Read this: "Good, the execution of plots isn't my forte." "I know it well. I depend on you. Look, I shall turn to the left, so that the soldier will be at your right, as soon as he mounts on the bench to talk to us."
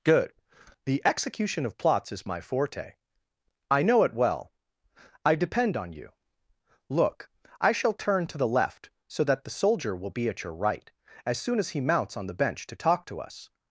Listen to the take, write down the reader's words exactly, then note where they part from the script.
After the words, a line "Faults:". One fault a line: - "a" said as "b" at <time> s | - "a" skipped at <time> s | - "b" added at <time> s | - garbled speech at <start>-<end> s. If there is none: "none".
"Good, the execution of plots is my forte." "I know it well. I depend on you. Look, I shall turn to the left, so that the soldier will be at your right, as soon as he mounts on the bench to talk to us."
Faults:
- "isn't" said as "is" at 2.1 s